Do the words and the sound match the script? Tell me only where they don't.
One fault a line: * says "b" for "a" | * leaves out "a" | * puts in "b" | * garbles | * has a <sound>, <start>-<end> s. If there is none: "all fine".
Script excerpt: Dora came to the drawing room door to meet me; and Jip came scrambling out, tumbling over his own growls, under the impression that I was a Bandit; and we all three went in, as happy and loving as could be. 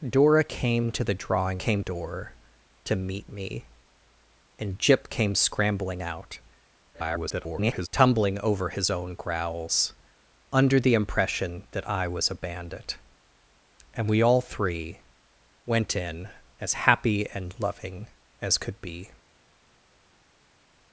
* says "came" for "room"
* garbles